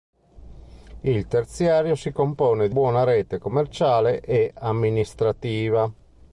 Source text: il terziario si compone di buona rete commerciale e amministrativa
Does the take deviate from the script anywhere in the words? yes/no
no